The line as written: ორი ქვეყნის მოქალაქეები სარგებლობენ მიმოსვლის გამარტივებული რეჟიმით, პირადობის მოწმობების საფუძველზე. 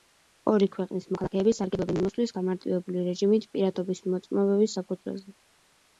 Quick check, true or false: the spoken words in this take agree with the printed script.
true